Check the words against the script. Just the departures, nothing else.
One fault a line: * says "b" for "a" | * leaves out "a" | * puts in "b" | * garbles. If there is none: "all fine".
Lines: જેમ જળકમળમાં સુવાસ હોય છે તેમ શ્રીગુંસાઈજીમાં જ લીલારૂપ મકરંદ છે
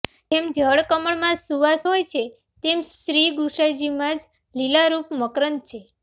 all fine